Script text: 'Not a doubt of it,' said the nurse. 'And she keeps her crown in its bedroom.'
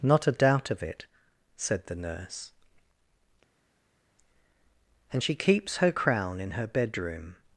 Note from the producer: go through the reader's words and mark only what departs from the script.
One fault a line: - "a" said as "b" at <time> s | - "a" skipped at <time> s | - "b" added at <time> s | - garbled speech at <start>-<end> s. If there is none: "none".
- "its" said as "her" at 6.5 s